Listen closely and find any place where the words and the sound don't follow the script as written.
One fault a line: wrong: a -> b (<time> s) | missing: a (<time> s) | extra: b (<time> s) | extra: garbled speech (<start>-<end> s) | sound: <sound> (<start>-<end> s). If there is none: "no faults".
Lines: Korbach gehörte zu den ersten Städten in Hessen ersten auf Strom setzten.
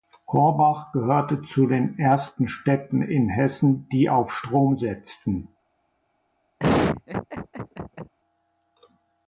wrong: ersten -> die (3.9 s)
sound: laugh (6.6-8.1 s)